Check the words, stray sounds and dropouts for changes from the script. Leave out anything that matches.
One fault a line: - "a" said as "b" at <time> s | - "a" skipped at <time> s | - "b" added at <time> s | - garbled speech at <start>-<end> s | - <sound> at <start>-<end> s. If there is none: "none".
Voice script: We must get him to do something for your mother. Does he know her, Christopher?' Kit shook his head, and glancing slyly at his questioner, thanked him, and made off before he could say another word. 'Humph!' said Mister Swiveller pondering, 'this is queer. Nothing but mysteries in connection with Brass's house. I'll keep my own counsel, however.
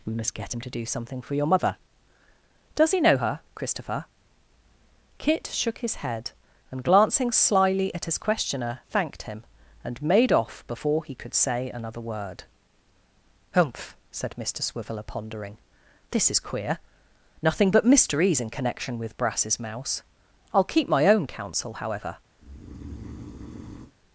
- "house" said as "mouse" at 19.6 s
- breath at 22.4-23.9 s